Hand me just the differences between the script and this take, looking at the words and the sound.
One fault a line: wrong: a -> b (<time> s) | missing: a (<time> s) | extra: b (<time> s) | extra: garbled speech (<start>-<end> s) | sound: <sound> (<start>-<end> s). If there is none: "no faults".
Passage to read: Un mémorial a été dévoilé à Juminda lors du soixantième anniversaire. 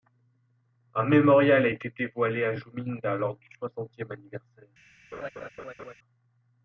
sound: laugh (5.1-5.9 s)